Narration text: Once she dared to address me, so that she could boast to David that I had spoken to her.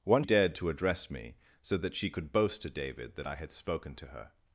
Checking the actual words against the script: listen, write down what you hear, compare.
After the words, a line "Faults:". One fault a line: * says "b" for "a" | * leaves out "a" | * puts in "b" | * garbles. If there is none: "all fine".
Once dared to address me, so that she could boast to David that I had spoken to her.
Faults:
* leaves out "she"